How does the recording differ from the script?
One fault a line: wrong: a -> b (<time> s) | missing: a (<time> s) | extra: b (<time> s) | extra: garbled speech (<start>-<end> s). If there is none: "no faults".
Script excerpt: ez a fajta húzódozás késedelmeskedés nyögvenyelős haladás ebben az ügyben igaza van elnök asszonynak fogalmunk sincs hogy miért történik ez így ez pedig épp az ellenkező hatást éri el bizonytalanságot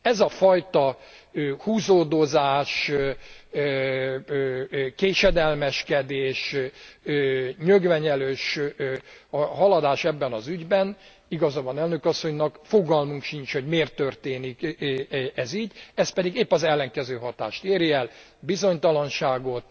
no faults